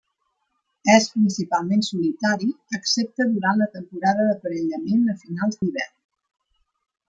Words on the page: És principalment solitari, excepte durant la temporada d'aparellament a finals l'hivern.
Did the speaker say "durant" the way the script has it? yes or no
yes